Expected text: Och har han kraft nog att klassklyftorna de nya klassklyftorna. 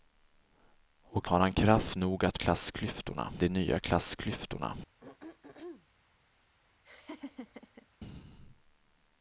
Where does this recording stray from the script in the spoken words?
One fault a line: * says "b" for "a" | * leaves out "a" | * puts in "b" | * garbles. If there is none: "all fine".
all fine